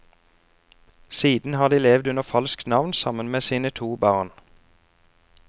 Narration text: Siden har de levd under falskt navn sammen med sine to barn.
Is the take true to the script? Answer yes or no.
yes